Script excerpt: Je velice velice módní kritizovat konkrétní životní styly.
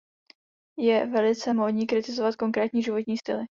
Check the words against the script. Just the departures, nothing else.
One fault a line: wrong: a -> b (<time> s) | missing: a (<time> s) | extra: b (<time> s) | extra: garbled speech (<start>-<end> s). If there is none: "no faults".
missing: velice (1.5 s)